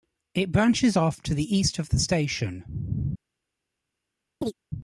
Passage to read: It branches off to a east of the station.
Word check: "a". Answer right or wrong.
wrong